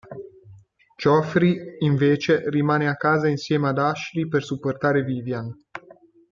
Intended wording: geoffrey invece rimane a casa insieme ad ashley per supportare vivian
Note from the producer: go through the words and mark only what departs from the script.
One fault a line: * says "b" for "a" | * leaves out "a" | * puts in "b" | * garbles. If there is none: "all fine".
all fine